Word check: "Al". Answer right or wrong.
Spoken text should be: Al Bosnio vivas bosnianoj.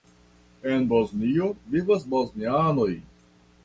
wrong